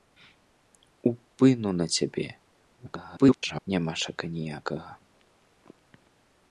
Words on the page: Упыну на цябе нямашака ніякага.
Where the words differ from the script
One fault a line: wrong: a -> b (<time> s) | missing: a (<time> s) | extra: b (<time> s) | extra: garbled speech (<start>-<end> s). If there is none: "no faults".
extra: garbled speech (2.8-3.7 s)